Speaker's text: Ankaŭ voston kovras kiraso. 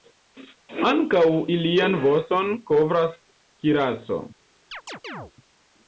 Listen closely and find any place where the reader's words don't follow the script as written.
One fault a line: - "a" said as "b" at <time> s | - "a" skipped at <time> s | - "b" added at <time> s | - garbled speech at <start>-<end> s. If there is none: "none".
- "ilian" added at 1.5 s